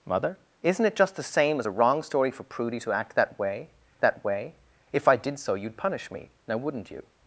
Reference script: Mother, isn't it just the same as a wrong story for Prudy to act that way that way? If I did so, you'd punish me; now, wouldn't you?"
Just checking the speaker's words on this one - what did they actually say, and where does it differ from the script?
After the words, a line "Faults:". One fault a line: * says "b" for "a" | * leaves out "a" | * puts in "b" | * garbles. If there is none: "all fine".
Mother, isn't it just the same as a wrong story for Prudy to act that way that way? If I did so, you'd punish me; now, wouldn't you?"
Faults:
all fine